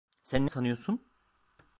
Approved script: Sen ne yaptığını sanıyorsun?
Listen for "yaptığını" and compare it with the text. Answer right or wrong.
wrong